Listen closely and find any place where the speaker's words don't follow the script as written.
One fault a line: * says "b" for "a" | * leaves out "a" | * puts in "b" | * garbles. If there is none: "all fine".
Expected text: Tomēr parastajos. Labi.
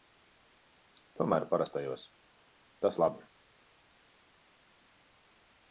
* puts in "Tas"